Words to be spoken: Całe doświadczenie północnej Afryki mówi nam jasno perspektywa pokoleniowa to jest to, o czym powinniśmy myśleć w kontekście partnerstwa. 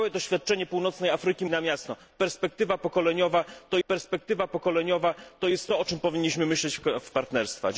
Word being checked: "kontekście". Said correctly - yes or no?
no